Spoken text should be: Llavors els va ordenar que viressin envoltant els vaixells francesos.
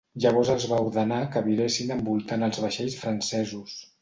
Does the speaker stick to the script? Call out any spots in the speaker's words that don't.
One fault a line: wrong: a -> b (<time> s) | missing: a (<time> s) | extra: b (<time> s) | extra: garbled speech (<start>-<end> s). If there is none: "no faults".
no faults